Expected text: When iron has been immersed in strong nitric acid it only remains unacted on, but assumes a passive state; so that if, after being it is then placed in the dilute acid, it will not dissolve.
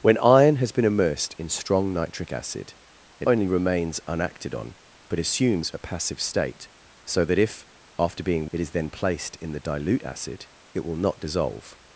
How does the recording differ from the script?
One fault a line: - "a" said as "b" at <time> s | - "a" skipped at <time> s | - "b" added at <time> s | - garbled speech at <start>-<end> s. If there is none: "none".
none